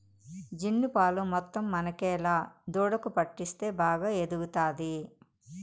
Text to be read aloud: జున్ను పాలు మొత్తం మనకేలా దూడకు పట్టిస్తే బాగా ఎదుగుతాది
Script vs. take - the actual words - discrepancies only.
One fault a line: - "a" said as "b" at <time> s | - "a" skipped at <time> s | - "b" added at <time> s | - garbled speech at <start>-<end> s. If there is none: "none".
none